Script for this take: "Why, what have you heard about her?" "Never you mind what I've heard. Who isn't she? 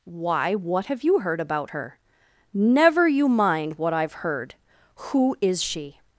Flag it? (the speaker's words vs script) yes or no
yes